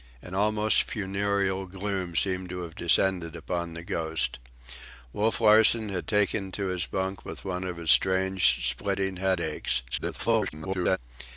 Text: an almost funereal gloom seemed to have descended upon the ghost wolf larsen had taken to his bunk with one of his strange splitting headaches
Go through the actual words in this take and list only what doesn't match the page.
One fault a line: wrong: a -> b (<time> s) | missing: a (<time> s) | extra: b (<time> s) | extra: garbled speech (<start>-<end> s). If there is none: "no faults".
extra: garbled speech (9.9-11.0 s)